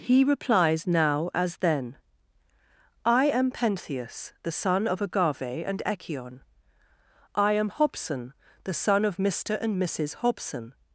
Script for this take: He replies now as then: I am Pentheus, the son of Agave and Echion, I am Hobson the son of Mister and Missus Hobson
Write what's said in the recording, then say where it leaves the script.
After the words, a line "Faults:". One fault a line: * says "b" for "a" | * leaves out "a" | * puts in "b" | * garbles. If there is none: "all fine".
He replies now as then: I am Pentheus, the son of Agave and Echion, I am Hobson the son of Mister and Missus Hobson
Faults:
all fine